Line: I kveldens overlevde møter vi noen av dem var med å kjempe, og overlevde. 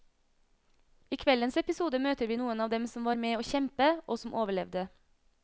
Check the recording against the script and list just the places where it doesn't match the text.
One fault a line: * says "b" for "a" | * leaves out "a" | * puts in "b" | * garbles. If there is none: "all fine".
* says "episode" for "overlevde"
* puts in "som"
* puts in "som"